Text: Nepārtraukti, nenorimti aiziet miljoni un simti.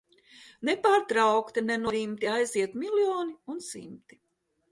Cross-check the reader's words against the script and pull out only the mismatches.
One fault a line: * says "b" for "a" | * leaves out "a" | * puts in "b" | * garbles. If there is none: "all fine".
all fine